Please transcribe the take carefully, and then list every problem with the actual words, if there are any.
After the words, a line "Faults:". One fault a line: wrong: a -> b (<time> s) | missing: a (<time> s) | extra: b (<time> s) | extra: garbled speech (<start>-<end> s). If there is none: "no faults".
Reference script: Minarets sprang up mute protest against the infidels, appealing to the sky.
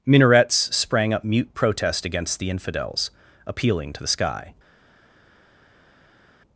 Minarets sprang up mute protest against the infidels, appealing to the sky.
Faults:
no faults